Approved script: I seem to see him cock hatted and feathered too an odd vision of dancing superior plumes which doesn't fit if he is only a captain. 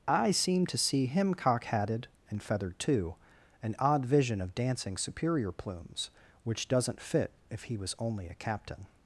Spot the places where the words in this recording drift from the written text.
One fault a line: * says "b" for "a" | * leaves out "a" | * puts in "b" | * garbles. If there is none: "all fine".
* says "was" for "is"